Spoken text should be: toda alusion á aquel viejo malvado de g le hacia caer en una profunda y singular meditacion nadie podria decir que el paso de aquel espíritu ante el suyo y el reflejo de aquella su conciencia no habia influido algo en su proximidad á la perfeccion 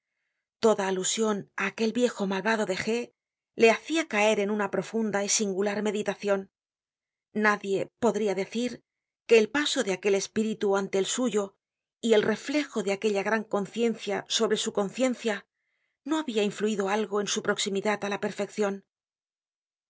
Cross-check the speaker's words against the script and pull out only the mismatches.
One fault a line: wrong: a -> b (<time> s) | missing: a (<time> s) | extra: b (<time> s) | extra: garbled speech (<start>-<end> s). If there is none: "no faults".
extra: gran conciencia sobre (13.3 s)